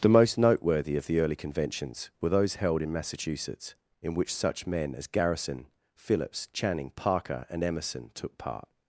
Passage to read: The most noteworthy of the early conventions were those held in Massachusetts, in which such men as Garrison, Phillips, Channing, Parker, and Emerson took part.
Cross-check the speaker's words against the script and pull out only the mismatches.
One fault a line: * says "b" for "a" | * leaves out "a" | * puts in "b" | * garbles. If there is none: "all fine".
all fine